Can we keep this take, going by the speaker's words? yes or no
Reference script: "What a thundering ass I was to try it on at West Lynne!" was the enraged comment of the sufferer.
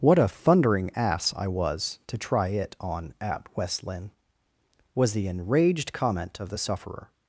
yes